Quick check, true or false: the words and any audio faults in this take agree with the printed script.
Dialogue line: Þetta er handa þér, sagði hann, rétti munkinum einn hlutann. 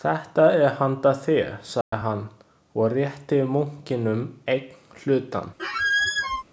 false